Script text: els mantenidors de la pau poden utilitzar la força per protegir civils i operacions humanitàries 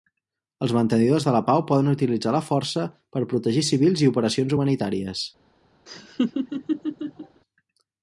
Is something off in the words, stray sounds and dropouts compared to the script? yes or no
yes